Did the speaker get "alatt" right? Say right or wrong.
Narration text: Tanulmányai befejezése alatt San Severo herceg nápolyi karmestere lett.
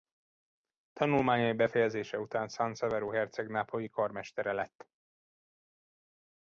wrong